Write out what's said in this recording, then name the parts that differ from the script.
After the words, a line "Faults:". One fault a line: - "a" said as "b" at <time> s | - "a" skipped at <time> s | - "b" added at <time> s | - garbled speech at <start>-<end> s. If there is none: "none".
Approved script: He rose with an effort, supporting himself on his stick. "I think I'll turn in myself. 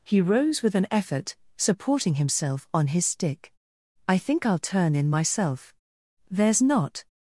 He rose with an effort, supporting himself on his stick. "I think I'll turn in myself. There's not
Faults:
- "There's not" added at 6.3 s